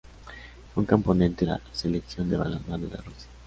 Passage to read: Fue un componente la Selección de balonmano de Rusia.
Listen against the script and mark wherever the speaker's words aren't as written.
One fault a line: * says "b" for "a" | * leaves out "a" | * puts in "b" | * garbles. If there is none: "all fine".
all fine